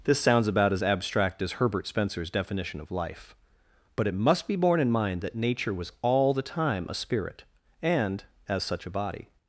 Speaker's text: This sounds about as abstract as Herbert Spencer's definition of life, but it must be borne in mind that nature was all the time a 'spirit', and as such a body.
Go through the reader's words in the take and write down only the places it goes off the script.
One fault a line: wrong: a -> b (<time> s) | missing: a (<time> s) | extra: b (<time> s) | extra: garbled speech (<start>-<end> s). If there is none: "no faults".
no faults